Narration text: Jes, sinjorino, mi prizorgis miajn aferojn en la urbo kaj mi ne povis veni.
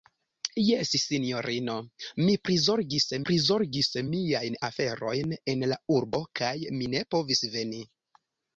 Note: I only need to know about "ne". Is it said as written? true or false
true